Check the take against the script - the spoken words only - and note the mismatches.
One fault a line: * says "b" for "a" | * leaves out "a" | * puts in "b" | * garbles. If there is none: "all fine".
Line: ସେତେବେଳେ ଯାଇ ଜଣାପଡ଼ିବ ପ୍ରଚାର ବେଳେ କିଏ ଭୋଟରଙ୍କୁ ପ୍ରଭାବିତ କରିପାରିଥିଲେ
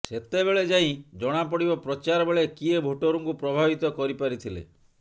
all fine